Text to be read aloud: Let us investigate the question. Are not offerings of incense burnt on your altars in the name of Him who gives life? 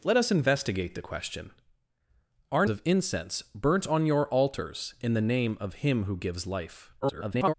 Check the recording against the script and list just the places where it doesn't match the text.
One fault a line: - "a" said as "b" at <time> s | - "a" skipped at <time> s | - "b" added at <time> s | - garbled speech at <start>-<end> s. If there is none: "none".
- "not offerings" skipped at 2.6 s
- garbled speech at 7.0-7.5 s